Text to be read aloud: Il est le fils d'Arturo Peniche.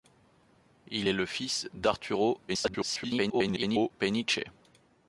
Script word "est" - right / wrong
right